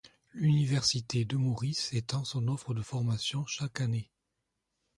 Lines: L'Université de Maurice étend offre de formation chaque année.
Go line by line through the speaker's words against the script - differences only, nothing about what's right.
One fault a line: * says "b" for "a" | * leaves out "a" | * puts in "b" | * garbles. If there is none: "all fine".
* puts in "son"